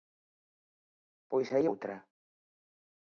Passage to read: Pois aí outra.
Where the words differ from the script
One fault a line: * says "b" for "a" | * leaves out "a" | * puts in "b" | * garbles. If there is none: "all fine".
all fine